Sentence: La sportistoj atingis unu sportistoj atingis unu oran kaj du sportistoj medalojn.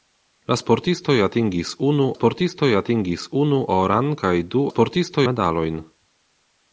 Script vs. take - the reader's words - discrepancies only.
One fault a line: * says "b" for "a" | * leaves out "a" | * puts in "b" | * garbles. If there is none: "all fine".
all fine